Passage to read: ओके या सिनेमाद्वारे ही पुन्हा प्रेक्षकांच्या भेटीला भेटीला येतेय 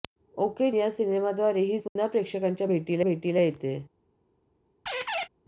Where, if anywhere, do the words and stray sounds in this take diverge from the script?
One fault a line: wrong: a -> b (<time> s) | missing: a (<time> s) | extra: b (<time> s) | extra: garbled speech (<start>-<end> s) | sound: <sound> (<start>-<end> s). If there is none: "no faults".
sound: dropout (1.9-2.0 s)
sound: squeak (4.9-5.3 s)